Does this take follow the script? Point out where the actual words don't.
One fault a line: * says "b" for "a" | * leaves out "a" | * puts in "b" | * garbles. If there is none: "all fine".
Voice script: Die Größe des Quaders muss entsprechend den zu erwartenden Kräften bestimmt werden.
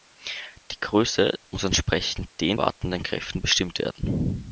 * leaves out "des Quaders"
* leaves out "zu"